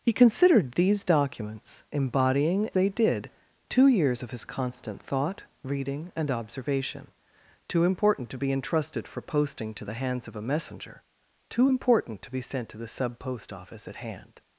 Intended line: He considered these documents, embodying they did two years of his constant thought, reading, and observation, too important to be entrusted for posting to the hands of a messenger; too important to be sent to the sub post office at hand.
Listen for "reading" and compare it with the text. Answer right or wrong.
right